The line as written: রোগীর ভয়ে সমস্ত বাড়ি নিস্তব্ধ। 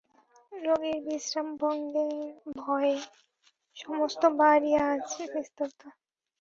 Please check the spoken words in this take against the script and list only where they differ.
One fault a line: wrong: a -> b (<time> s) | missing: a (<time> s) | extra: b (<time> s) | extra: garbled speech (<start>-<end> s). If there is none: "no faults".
extra: বিশ্রামভঙ্গের (1.0 s)
extra: আজ (4.9 s)